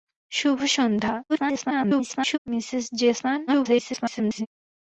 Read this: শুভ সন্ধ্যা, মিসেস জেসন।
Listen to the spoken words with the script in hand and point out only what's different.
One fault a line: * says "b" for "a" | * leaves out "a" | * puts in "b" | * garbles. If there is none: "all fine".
* garbles
* garbles